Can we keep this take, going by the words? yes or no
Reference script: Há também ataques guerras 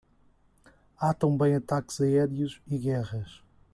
no